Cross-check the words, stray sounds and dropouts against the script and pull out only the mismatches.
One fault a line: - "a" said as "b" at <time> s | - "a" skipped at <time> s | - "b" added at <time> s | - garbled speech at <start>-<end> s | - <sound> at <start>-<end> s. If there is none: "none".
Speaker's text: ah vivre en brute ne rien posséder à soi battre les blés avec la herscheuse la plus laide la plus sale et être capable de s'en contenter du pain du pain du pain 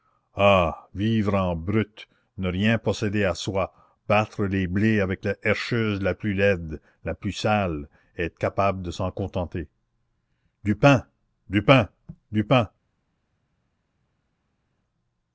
none